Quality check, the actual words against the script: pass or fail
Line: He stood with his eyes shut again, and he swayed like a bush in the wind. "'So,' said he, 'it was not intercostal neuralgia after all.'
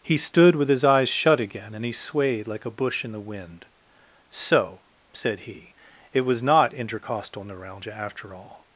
pass